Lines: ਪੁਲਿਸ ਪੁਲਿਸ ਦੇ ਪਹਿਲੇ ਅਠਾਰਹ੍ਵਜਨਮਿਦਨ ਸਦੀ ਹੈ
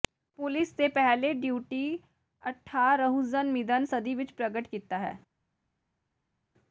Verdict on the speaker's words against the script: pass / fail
fail